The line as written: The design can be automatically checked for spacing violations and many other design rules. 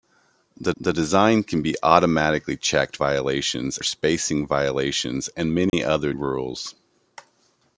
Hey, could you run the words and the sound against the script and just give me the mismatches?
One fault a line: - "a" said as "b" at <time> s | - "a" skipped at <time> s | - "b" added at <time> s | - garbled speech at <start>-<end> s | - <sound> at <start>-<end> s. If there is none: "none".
- "the" added at 0.8 s
- "for" said as "violations" at 3.0 s
- dropout at 5.7-5.7 s
- "design" skipped at 6.1 s